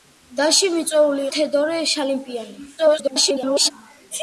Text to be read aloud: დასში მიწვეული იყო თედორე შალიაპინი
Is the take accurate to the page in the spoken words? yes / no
no